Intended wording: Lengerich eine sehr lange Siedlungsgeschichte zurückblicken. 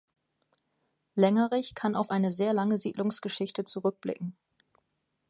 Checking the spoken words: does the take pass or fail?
fail